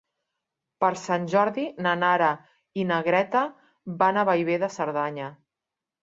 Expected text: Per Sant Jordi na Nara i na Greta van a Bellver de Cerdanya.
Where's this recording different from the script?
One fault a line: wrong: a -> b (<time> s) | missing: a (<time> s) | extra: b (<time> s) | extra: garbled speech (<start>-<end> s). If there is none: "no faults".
no faults